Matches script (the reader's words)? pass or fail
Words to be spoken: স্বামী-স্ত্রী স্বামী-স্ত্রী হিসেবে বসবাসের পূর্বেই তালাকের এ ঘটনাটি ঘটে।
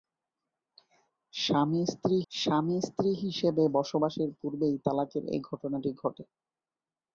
pass